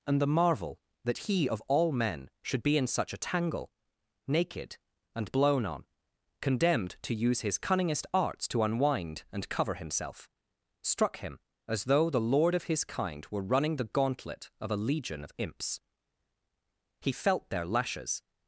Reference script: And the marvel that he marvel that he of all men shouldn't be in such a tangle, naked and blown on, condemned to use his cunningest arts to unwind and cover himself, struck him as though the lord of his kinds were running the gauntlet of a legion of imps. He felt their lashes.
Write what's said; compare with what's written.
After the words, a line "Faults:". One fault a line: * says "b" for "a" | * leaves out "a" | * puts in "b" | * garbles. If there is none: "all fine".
And the marvel that he of all men should be in such a tangle, naked and blown on, condemned to use his cunningest arts to unwind and cover himself, struck him as though the lord of his kind were running the gauntlet of a legion of imps. He felt their lashes.
Faults:
* leaves out "marvel that he"
* says "should" for "shouldn't"
* says "kind" for "kinds"